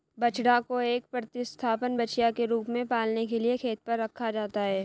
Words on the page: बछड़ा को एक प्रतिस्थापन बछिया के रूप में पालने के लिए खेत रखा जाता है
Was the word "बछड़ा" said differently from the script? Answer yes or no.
no